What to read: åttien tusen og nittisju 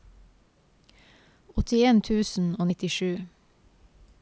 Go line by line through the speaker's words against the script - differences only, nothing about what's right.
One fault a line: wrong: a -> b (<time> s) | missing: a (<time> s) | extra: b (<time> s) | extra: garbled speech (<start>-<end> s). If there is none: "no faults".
no faults